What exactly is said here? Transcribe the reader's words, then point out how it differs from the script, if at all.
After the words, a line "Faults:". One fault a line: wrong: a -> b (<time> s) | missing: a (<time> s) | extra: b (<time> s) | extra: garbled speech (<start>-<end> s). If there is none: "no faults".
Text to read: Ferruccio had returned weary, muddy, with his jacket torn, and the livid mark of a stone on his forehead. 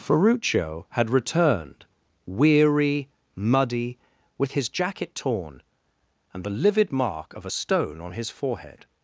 Ferruccio had returned weary, muddy, with his jacket torn, and the livid mark of a stone on his forehead.
Faults:
no faults